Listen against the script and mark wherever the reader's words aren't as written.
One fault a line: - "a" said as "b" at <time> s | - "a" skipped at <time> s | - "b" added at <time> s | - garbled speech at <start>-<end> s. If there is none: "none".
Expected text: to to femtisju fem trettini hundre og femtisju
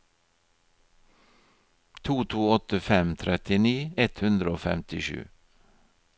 - "femtisju" said as "åtte" at 2.5 s
- "ett" added at 4.0 s